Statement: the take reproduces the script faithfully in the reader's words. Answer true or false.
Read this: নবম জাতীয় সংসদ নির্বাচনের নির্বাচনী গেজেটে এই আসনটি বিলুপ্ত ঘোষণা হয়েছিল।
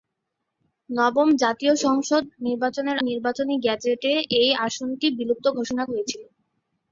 true